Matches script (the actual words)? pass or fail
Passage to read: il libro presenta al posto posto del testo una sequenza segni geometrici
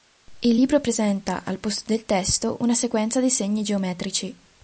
fail